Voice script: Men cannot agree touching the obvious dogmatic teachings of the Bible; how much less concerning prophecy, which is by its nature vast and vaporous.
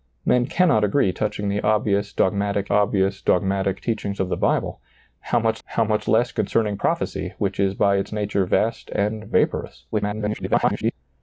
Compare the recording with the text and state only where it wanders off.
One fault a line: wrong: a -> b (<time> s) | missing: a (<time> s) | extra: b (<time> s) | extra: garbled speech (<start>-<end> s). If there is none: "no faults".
extra: obvious dogmatic (2.7 s)
extra: how much (5.6 s)
extra: garbled speech (9.9-10.9 s)